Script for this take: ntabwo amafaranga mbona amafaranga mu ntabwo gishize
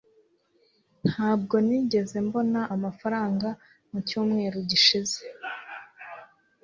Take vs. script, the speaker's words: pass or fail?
fail